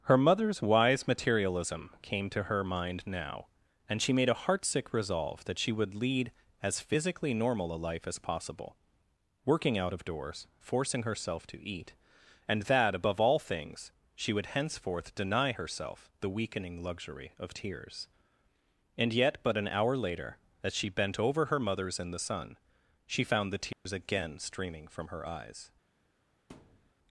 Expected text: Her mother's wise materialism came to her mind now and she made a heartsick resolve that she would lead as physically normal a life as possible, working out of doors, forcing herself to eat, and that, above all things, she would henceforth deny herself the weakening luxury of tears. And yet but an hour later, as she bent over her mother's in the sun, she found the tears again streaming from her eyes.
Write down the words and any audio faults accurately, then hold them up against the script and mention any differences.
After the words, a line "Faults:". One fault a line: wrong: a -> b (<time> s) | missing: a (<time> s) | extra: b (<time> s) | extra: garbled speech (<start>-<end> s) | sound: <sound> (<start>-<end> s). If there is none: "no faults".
Her mother's wise materialism came to her mind now and she made a heartsick resolve that she would lead as physically normal a life as possible, working out of doors, forcing herself to eat, and that, above all things, she would henceforth deny herself the weakening luxury of tears. And yet but an hour later, as she bent over her mother's in the sun, she found the tears again streaming from her eyes.
Faults:
sound: dropout (23.7-23.9 s)
sound: thud (26.5-26.9 s)